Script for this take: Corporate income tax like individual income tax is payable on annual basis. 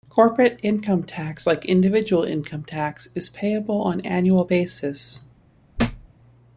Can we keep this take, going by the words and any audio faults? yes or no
no